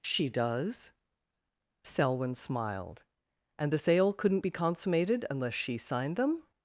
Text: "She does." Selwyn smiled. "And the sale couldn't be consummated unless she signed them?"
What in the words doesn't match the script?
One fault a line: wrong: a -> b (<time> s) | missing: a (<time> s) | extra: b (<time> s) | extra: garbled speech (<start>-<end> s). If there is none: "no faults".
no faults